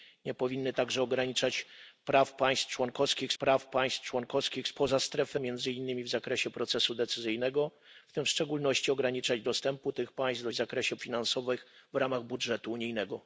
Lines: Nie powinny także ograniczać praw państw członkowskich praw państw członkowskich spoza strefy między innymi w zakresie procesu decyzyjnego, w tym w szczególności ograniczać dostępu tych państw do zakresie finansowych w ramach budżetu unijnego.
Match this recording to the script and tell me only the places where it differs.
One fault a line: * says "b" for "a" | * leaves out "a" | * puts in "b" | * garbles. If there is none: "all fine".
all fine